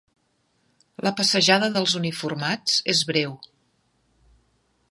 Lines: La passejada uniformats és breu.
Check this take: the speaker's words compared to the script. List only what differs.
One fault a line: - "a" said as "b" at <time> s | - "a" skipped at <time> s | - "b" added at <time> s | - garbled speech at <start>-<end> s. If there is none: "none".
- "dels" added at 1.7 s